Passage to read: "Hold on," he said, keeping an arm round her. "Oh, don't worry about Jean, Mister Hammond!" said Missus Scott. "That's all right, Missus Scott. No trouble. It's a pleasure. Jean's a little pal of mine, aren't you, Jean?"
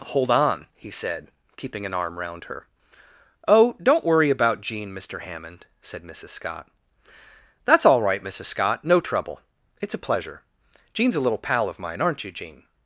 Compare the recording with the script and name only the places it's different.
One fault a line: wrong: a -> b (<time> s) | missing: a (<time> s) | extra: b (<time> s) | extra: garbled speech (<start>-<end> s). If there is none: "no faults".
no faults